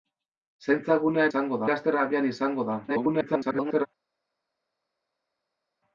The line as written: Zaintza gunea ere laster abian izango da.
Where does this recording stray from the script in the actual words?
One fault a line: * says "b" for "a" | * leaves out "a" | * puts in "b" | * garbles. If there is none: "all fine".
* says "izango" for "ere"
* garbles